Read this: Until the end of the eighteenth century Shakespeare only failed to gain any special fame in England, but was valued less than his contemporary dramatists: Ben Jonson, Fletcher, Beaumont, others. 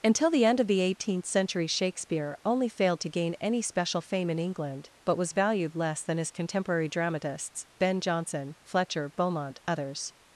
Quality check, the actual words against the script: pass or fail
pass